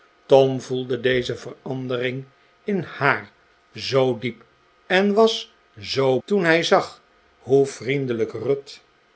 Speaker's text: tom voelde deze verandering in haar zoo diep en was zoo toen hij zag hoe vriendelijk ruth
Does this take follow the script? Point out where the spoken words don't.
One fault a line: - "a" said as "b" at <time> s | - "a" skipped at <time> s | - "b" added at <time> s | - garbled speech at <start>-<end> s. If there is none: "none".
none